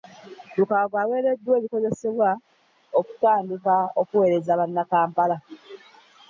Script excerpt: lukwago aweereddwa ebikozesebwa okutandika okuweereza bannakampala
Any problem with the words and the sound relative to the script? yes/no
no